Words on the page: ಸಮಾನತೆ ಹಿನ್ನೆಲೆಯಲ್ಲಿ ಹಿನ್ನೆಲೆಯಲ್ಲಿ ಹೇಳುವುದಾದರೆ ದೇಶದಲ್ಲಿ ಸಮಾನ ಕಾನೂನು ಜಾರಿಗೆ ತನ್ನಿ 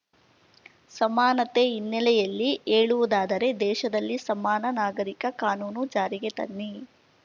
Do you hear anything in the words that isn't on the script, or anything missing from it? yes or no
yes